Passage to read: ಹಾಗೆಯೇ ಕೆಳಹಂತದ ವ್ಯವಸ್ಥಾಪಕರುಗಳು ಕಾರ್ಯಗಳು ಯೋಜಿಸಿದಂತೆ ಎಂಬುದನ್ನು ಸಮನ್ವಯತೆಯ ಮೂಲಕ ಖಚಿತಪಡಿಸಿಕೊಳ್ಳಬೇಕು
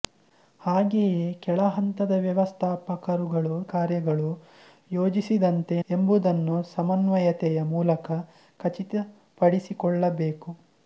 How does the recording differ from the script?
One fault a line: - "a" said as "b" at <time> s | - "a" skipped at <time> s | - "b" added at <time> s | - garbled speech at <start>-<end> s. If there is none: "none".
none